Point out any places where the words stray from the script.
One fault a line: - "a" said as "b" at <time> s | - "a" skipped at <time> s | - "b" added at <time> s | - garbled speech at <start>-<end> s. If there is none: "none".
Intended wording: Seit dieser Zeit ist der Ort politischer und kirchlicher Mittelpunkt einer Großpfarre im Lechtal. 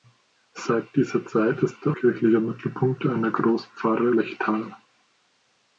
- "Ort politischer und" skipped at 1.9 s
- "im" skipped at 4.1 s